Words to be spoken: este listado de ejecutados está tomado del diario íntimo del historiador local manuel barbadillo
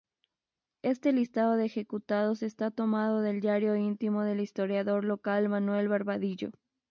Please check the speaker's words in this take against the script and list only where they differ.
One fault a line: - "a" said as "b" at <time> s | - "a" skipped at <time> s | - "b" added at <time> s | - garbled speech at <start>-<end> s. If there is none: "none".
none